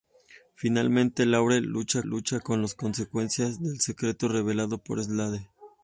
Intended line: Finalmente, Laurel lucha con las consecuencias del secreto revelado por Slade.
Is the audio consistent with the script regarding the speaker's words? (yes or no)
no